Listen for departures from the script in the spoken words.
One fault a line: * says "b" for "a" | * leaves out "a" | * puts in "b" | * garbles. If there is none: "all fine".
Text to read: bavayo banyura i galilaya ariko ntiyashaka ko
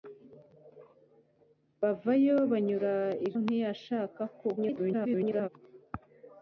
* leaves out "galilaya ariko"
* garbles